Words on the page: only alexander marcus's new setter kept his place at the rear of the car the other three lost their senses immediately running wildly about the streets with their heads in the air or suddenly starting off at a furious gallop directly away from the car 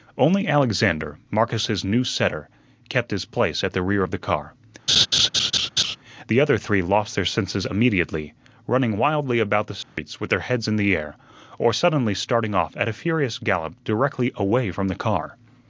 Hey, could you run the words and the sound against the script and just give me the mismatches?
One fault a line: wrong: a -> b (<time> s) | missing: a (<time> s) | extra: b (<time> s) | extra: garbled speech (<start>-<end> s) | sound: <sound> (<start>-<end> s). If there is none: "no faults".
sound: laugh (4.9-6.0 s)
sound: dropout (9.8-10.0 s)